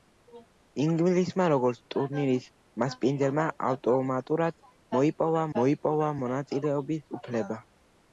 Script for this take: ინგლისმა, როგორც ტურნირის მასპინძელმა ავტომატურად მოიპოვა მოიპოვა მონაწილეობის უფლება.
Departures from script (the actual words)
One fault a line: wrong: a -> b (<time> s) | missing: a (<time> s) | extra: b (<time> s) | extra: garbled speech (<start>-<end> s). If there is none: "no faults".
no faults